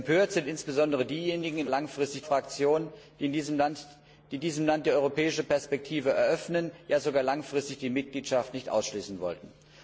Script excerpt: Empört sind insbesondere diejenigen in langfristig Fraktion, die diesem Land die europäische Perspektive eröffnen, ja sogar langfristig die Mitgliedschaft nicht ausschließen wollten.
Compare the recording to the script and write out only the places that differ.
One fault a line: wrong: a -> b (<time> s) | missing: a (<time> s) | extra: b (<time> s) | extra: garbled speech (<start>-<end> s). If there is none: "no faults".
no faults